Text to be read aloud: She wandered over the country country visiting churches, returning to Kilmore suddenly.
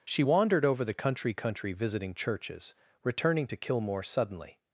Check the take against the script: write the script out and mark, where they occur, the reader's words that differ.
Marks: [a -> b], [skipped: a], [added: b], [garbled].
She wandered over the country country visiting churches, returning to Kilmore suddenly.